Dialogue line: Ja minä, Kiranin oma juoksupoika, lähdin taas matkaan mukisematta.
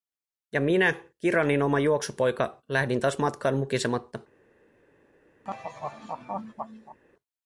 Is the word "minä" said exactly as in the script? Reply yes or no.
yes